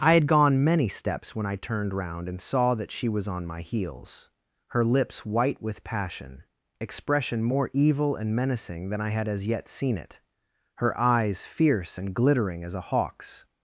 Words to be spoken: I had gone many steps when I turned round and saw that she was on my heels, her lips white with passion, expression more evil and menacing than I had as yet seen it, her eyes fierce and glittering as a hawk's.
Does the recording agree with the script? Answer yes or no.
yes